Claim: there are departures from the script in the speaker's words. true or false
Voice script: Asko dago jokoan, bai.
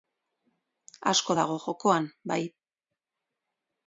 false